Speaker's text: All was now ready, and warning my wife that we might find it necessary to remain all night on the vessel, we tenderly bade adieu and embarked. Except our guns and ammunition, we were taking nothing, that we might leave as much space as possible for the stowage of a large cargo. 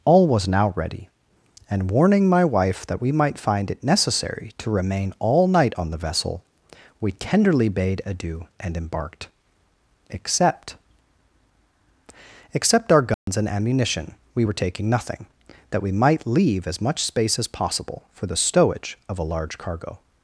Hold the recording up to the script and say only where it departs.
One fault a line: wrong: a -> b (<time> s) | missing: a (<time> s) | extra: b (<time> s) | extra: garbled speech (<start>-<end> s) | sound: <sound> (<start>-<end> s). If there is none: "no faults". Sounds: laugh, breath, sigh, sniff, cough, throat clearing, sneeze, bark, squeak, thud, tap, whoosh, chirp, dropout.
extra: Except (12.5 s)
sound: dropout (13.1-13.3 s)